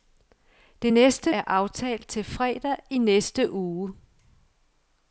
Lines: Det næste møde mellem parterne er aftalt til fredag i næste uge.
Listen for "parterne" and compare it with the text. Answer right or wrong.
wrong